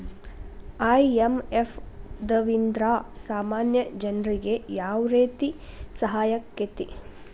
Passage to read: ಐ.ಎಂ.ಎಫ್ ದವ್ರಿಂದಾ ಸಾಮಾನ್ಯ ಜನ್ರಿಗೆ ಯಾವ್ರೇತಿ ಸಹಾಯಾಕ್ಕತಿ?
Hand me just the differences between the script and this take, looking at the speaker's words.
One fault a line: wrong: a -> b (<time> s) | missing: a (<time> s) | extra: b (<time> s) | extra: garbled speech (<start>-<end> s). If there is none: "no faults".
no faults